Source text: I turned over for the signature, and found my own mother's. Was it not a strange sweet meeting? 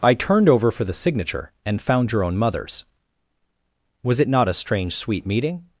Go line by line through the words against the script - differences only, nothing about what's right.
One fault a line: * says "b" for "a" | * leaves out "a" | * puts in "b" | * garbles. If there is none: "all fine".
* says "your" for "my"